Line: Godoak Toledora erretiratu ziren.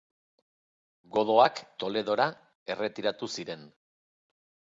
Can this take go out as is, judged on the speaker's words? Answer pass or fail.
pass